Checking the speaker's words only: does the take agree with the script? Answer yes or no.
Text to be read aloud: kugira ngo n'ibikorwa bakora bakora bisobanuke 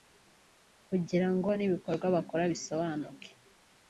no